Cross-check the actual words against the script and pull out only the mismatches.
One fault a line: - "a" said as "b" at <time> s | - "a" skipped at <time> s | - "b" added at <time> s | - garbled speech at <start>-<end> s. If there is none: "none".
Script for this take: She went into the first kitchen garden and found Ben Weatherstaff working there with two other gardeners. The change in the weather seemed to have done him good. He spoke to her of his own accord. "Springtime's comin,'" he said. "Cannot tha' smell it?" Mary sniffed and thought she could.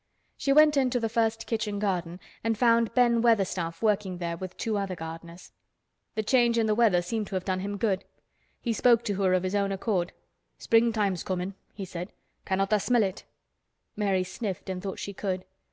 none